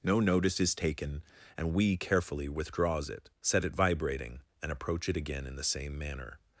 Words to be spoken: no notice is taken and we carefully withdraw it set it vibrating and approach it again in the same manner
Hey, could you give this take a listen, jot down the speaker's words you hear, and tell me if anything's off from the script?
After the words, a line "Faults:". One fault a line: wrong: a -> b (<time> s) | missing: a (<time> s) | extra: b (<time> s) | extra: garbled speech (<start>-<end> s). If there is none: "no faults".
no notice is taken and we carefully withdraws it set it vibrating and approach it again in the same manner
Faults:
wrong: withdraw -> withdraws (2.5 s)